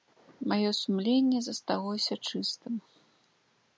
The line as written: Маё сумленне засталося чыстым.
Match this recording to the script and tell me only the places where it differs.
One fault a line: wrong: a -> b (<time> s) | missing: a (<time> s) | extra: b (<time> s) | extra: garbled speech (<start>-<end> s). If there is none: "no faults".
no faults